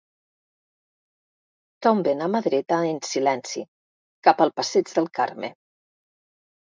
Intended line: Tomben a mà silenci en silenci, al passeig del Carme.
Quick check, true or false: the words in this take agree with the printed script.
false